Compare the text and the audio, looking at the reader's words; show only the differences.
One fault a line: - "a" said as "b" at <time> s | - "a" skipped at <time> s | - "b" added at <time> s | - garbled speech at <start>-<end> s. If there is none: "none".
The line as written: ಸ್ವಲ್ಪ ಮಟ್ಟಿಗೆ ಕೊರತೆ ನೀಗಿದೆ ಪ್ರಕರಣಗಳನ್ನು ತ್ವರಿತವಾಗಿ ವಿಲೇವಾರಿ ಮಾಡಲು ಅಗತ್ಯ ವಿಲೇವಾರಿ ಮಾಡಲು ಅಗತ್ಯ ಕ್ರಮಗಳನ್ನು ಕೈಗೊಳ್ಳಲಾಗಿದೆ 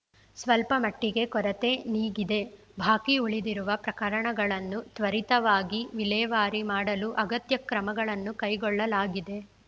- "ಬಾಕಿ ಉಳಿದಿರುವ" added at 2.8 s
- "ವಿಲೇವಾರಿ ಮಾಡಲು ಅಗತ್ಯ" skipped at 7.6 s